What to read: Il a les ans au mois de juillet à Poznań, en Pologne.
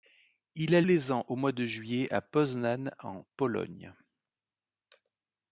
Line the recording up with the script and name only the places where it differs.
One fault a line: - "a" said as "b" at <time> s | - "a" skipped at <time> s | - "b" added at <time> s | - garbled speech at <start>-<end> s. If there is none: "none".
none